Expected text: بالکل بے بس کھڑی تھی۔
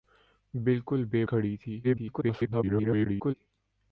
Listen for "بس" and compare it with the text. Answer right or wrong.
wrong